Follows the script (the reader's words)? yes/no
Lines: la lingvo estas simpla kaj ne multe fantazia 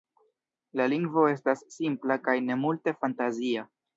yes